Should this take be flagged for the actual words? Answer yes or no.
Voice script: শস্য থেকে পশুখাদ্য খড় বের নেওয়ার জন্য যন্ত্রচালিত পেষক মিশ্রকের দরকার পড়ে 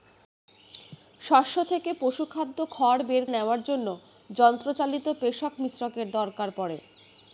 no